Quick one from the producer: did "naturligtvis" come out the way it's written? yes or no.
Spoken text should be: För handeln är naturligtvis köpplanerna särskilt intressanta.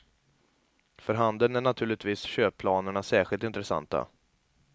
yes